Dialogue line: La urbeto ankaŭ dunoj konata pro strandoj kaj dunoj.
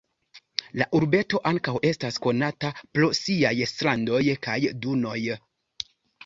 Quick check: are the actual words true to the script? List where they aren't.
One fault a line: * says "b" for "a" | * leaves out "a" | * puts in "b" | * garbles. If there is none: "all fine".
* says "estas" for "dunoj"
* puts in "siaj"